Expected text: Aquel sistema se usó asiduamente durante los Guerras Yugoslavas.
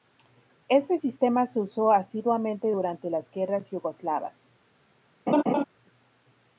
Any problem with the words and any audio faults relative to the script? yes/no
yes